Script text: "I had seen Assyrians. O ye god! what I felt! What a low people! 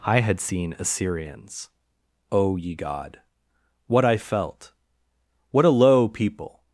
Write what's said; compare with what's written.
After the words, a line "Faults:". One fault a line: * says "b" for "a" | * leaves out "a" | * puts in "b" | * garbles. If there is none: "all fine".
"I had seen Assyrians. O ye god! what I felt! What a low people!
Faults:
all fine